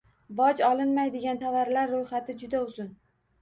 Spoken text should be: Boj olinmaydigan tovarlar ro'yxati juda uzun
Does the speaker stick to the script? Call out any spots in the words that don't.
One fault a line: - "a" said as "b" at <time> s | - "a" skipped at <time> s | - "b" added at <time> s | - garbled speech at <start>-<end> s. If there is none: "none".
none